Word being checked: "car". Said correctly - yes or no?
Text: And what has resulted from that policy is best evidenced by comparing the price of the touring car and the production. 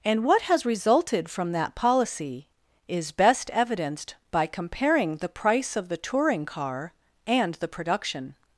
yes